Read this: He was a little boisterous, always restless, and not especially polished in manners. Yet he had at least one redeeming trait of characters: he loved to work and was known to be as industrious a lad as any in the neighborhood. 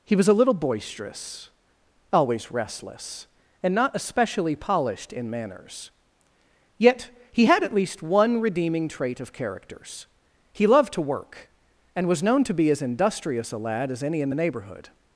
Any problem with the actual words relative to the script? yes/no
no